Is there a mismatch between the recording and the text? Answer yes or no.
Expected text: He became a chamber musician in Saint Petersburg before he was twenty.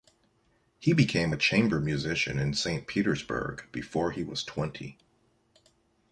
no